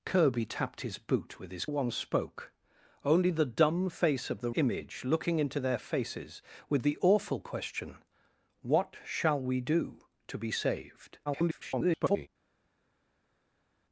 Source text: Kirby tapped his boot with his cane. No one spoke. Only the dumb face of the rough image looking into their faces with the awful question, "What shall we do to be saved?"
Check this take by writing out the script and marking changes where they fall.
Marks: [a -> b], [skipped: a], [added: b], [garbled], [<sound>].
Kirby tapped his boot with his [skipped: cane. No] one spoke. Only the dumb face of the [skipped: rough] image looking into their faces with the awful question, "What shall we do to be saved?" [garbled]